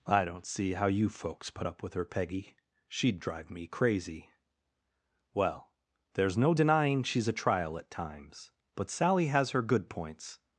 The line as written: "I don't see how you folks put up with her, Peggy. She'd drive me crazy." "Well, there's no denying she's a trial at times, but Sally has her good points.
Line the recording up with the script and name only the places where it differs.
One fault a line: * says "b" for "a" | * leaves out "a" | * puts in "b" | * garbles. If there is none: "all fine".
all fine